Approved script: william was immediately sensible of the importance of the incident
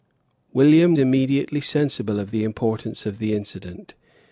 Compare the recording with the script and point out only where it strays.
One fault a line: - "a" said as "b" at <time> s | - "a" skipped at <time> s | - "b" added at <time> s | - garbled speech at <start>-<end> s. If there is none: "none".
- "was" skipped at 1.0 s